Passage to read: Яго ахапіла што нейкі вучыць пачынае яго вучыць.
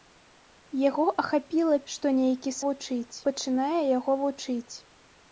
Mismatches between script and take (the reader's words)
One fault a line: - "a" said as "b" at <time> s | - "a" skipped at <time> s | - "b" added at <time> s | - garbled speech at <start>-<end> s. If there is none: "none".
none